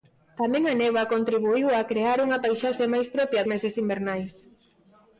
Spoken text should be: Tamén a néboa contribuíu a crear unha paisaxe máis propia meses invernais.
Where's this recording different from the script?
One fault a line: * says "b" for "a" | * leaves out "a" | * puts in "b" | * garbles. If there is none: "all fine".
all fine